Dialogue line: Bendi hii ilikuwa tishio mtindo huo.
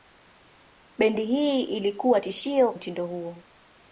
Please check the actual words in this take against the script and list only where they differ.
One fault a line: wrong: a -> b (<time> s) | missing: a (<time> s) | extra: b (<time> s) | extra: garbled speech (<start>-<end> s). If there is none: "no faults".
no faults